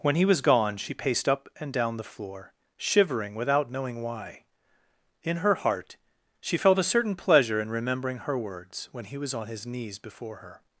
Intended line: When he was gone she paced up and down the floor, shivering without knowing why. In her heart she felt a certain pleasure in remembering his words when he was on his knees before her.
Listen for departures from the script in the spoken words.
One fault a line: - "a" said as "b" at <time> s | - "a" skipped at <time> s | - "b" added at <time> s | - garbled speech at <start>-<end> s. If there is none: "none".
- "his" said as "her" at 8.2 s